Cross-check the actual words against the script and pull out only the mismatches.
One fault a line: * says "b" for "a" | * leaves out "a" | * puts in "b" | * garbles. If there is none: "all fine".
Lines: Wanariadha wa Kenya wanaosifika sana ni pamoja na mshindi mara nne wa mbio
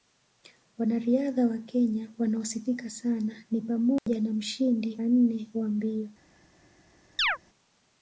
* leaves out "mara"